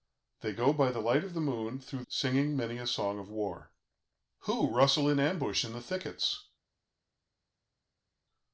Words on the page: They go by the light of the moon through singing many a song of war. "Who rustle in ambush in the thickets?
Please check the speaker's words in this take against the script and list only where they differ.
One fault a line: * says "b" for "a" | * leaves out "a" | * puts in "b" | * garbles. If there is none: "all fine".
all fine